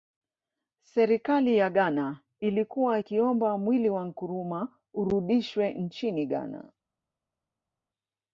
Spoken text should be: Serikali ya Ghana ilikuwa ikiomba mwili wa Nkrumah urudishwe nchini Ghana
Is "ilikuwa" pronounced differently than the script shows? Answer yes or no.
no